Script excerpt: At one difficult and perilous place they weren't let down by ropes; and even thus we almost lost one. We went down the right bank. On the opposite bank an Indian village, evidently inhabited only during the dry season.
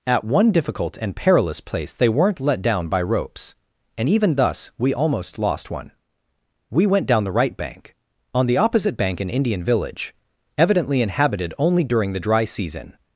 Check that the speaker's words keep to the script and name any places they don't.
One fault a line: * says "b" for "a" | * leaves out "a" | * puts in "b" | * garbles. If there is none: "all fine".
all fine